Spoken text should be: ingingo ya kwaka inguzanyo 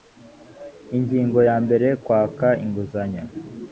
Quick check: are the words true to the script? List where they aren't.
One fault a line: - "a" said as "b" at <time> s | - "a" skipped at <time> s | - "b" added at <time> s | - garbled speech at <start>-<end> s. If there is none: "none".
- "mbere" added at 1.6 s